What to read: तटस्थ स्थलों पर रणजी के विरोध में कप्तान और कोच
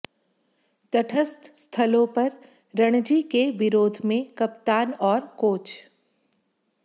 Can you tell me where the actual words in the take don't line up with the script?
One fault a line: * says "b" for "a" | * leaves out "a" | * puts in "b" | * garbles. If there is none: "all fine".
all fine